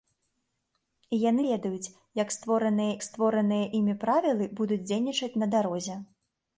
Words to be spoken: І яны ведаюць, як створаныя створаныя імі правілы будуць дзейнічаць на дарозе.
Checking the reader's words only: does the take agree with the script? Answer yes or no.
yes